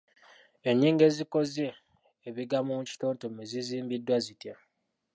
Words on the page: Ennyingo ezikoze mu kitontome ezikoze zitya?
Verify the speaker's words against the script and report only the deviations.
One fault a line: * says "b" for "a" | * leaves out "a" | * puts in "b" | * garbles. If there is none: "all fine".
* puts in "ebigambo"
* says "zizimbiddwa" for "ezikoze"